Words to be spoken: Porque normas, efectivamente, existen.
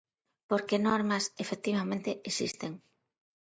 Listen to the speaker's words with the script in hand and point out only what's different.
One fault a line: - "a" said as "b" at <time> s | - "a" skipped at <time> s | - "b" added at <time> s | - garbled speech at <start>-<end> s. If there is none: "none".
none